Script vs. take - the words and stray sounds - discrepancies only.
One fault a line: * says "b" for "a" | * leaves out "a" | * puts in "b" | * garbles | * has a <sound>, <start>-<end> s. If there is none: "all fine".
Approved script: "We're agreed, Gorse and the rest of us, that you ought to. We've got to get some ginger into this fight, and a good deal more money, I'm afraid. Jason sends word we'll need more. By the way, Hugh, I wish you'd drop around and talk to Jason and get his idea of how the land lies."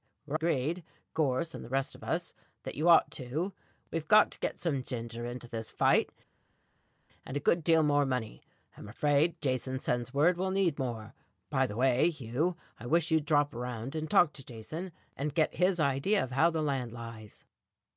all fine